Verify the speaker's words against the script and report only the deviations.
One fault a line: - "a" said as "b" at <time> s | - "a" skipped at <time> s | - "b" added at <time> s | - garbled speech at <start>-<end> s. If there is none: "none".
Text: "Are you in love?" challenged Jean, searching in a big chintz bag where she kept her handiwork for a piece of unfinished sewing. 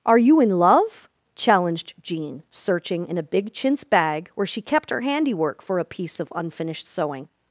none